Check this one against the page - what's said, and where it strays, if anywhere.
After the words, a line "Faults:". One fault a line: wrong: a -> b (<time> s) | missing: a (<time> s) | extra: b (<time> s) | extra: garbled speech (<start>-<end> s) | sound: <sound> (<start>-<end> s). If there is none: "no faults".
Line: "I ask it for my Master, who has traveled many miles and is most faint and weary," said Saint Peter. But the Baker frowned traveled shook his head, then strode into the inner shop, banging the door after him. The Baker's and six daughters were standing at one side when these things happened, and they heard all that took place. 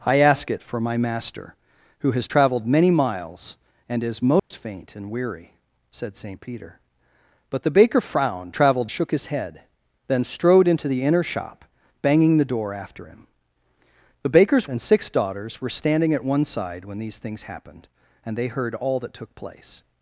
"I ask it for my Master, who has traveled many miles and is most faint and weary," said Saint Peter. But the Baker frowned traveled shook his head, then strode into the inner shop, banging the door after him. The Baker's and six daughters were standing at one side when these things happened, and they heard all that took place.
Faults:
sound: dropout (4.4-4.5 s)